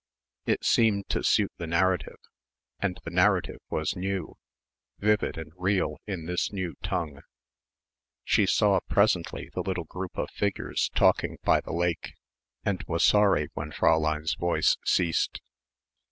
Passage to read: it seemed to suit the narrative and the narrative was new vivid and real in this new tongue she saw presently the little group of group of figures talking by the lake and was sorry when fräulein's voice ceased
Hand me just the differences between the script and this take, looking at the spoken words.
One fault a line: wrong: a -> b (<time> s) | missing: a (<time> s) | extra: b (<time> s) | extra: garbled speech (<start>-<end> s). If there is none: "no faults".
missing: group of (10.3 s)